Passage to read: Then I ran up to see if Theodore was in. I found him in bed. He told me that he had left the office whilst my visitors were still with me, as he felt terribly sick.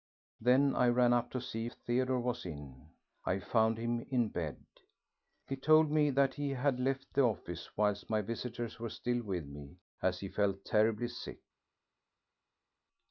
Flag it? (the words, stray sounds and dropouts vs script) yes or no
no